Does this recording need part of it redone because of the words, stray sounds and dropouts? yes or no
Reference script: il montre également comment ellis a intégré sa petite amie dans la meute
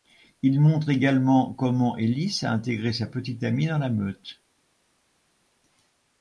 no